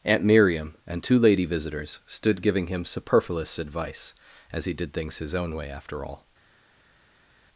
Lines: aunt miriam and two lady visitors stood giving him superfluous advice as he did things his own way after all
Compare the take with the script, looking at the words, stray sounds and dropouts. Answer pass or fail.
pass